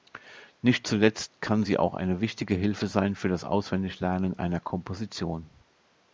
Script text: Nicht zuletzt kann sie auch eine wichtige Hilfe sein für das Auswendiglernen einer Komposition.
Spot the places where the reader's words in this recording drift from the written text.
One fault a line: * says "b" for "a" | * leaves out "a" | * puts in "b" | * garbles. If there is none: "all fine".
all fine